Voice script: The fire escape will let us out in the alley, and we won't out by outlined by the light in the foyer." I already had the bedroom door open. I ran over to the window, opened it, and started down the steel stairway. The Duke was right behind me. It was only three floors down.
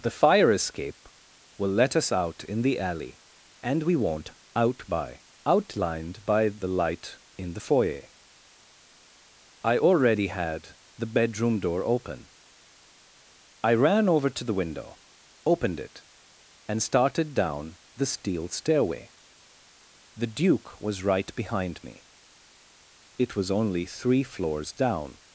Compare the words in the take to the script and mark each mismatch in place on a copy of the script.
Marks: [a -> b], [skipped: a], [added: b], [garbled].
The fire escape will let us out in the alley, and we won't out by outlined by the light in the foyer." I already had the bedroom door open. I ran over to the window, opened it, and started down the steel stairway. The Duke was right behind me. It was only three floors down.